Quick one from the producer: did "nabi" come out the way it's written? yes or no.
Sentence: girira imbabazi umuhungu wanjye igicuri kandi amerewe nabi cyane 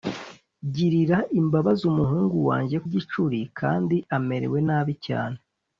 yes